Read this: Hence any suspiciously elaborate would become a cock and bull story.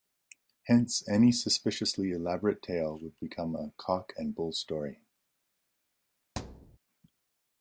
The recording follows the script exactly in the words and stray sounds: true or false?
false